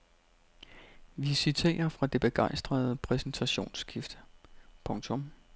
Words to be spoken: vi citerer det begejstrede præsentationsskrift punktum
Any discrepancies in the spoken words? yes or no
yes